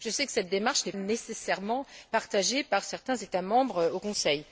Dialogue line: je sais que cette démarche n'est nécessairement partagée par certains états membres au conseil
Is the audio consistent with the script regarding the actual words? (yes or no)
yes